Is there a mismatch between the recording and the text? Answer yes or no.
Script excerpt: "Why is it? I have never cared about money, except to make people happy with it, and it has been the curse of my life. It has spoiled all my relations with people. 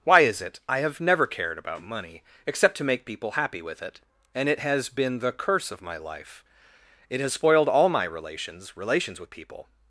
yes